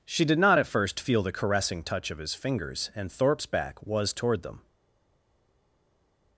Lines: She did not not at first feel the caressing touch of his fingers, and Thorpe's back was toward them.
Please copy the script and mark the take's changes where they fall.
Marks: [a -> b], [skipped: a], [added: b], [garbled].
She did not [skipped: not] at first feel the caressing touch of his fingers, and Thorpe's back was toward them.